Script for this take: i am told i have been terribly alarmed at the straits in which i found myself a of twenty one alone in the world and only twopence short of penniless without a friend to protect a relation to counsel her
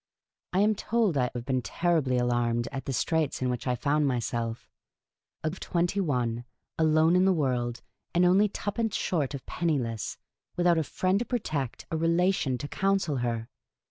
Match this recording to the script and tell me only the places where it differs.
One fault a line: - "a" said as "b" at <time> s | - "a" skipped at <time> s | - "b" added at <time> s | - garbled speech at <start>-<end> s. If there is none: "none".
none